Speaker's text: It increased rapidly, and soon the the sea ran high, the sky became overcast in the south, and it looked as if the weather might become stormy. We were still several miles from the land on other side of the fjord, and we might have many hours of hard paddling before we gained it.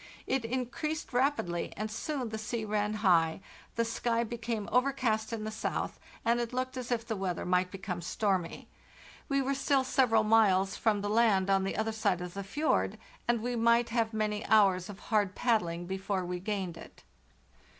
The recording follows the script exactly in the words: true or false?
false